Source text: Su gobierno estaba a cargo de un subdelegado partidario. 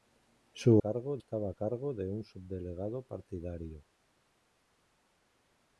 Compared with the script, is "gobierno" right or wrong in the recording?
wrong